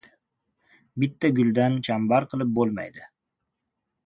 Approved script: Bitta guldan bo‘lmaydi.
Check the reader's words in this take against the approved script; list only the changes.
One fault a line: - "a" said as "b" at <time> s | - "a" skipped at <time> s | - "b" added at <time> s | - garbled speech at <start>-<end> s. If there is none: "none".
- "chambar qilib" added at 1.9 s